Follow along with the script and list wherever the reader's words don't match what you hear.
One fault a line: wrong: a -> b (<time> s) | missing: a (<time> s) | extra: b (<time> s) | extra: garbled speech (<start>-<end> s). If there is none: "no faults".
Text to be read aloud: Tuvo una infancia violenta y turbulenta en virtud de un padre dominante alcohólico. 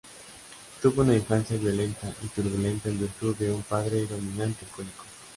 no faults